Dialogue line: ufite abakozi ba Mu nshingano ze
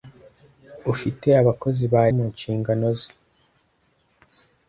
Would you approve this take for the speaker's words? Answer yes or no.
yes